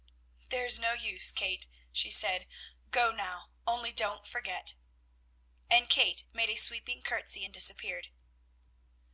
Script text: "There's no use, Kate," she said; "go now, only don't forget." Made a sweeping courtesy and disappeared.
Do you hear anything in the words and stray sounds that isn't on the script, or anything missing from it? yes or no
yes